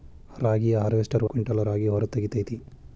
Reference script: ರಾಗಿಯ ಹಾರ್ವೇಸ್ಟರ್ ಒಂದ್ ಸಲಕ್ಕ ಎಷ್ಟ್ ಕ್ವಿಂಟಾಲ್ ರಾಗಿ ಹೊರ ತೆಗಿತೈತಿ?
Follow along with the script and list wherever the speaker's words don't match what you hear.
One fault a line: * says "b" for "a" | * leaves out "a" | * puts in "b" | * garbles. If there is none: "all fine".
* leaves out "ಒಂದ್ ಸಲಕ್ಕ ಎಷ್ಟ್"